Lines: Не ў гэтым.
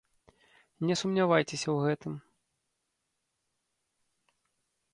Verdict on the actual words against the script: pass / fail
fail